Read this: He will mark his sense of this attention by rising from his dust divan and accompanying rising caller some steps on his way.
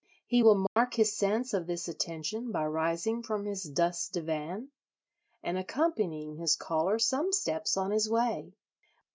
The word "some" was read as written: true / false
true